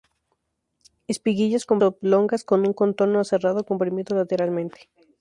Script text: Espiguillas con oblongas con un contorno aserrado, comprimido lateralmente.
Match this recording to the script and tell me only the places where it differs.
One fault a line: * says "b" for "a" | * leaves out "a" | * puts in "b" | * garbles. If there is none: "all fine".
all fine